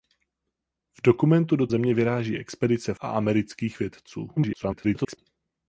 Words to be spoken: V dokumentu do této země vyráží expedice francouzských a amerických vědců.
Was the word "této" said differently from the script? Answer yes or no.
yes